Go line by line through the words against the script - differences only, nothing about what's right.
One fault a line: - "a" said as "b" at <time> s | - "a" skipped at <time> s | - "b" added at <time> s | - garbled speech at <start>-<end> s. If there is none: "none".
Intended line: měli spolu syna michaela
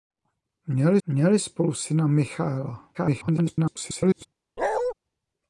- "měli" added at 1.1 s
- garbled speech at 2.9-4.3 s